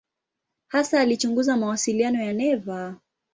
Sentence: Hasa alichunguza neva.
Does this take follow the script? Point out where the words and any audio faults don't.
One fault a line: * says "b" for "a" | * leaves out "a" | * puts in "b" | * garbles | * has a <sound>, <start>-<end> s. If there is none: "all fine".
* puts in "mawasiliano ya"